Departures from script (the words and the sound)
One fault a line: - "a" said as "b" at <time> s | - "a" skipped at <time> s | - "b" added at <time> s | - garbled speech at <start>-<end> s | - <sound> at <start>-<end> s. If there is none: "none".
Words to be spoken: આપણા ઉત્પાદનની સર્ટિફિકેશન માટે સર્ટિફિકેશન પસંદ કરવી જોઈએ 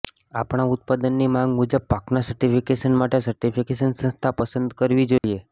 - "માંગ મુજબ પાકના" added at 1.3 s
- "સંસ્થા" added at 4.0 s
- dropout at 5.2-5.2 s